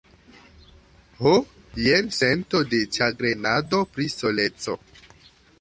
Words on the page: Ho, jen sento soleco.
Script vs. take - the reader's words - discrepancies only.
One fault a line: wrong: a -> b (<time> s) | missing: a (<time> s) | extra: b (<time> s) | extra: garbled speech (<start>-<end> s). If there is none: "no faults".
extra: de ĉagrenado pri (2.7 s)